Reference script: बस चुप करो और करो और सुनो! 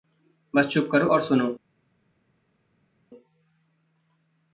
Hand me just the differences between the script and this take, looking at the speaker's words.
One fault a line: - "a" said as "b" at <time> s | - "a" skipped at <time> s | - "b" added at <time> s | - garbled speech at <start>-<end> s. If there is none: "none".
- "करो और" skipped at 1.2 s